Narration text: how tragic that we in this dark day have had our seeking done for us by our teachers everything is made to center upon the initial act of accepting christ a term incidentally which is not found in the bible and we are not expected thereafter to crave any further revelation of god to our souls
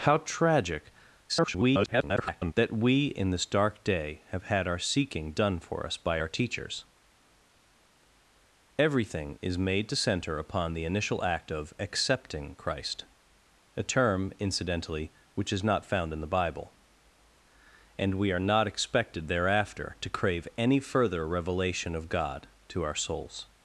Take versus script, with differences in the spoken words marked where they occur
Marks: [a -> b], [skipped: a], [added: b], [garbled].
how tragic [garbled] that we in this dark day have had our seeking done for us by our teachers everything is made to center upon the initial act of accepting christ a term incidentally which is not found in the bible and we are not expected thereafter to crave any further revelation of god to our souls